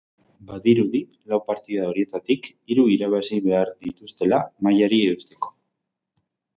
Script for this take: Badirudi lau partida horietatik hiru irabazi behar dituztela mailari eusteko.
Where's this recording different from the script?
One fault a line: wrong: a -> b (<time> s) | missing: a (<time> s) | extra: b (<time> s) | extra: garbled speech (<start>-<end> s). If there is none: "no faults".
no faults